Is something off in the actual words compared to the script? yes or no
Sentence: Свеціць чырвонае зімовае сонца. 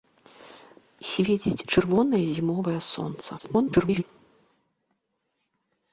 yes